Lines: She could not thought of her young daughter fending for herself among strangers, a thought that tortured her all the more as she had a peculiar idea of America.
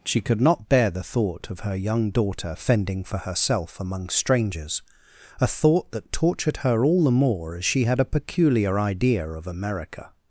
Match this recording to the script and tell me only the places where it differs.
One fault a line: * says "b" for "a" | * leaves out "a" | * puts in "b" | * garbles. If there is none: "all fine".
* puts in "bear the"